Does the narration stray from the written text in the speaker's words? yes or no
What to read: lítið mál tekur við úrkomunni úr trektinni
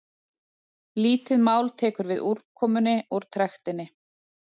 no